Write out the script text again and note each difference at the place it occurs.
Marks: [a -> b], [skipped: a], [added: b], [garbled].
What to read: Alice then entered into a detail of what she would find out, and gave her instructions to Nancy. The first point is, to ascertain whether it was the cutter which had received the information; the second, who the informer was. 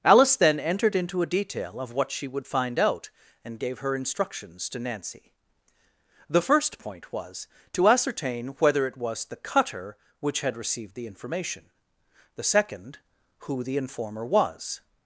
Alice then entered into a detail of what she would find out, and gave her instructions to Nancy. The first point [is, -> was] to ascertain whether it was the cutter which had received the information; the second, who the informer was.